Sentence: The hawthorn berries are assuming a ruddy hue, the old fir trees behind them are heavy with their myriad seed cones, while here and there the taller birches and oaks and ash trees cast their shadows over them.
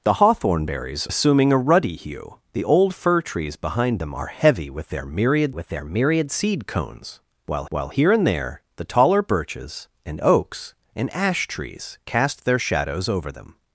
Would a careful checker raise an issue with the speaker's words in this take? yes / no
yes